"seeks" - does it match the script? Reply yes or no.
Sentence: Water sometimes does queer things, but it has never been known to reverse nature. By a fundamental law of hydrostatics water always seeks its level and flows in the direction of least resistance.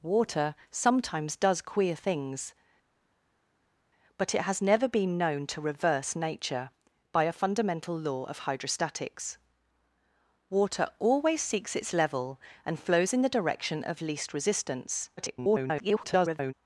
yes